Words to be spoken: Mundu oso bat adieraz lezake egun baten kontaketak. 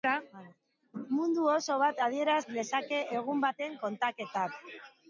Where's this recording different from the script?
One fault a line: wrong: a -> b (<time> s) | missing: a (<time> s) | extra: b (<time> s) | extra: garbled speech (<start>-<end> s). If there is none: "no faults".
no faults